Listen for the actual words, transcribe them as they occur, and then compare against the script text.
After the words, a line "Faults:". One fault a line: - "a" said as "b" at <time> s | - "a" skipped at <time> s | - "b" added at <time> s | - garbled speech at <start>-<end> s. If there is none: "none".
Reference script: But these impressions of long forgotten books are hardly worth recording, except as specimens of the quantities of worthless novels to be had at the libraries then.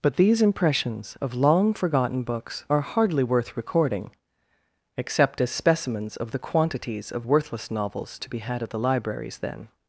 But these impressions of long forgotten books are hardly worth recording, except as specimens of the quantities of worthless novels to be had at the libraries then.
Faults:
none